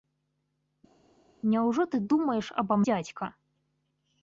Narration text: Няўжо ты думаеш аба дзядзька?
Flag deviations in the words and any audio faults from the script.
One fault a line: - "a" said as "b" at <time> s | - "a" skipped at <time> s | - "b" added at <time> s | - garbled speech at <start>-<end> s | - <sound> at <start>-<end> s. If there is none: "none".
none